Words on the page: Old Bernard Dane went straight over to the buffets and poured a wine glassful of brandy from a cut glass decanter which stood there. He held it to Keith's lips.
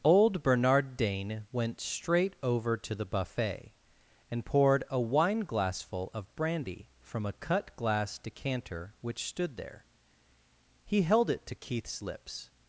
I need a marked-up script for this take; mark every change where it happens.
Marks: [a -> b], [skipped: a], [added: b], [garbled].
Old Bernard Dane went straight over to the [buffets -> buffet] and poured a wine glassful of brandy from a cut glass decanter which stood there. He held it to Keith's lips.